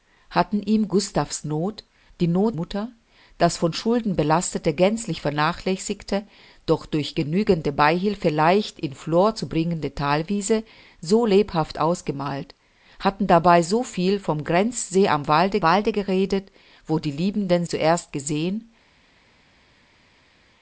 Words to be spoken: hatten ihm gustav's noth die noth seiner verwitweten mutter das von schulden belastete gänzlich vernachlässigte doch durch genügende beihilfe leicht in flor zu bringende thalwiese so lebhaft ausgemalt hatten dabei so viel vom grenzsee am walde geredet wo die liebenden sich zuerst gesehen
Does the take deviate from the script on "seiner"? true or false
true